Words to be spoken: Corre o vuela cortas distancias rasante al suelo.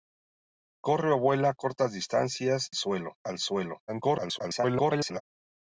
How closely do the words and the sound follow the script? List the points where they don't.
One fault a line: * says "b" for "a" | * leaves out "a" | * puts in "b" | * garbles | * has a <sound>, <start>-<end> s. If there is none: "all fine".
* says "suelo" for "rasante"
* garbles